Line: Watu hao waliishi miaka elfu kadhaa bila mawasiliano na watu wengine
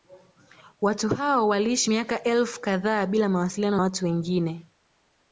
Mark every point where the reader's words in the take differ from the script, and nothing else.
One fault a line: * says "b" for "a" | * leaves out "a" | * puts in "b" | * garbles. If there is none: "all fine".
* leaves out "na"